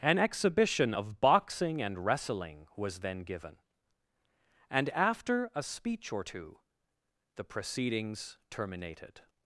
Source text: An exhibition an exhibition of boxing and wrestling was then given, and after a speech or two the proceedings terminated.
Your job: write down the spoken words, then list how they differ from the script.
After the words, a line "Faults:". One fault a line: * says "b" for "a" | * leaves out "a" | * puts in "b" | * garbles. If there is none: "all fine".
An exhibition of boxing and wrestling was then given, and after a speech or two the proceedings terminated.
Faults:
* leaves out "an exhibition"